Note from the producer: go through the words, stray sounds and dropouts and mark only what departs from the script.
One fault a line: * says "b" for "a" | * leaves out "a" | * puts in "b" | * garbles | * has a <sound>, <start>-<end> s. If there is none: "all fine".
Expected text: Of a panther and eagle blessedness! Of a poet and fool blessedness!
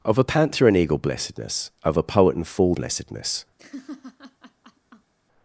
* has a laugh, 3.6-5.1 s